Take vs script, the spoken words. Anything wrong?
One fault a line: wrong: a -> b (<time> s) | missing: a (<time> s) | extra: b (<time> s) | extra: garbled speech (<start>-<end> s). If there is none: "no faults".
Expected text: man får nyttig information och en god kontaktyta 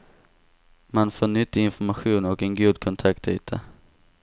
no faults